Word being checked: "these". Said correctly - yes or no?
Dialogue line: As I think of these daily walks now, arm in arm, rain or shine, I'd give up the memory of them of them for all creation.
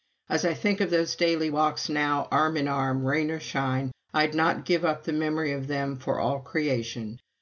no